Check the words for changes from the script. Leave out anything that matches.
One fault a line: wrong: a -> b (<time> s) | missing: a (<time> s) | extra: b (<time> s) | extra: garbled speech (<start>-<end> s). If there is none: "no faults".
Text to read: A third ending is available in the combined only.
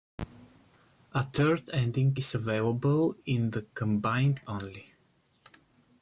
no faults